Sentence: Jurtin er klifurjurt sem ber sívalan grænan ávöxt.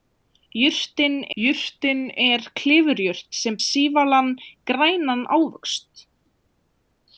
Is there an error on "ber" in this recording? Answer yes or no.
yes